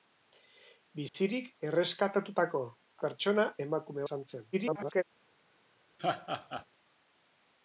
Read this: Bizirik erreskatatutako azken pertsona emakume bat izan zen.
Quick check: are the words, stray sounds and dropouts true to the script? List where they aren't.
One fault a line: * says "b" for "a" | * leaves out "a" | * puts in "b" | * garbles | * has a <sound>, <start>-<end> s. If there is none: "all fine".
* has a dropout, 1.1-1.1 s
* leaves out "azken"
* leaves out "bat"
* garbles
* has a laugh, 6.0-6.7 s